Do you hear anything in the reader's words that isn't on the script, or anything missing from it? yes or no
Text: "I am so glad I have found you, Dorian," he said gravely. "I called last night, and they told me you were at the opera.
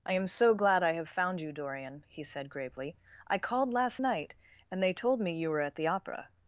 no